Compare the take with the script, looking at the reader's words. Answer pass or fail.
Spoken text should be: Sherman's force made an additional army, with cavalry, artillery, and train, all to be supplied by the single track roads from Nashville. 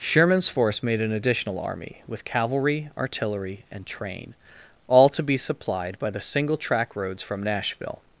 pass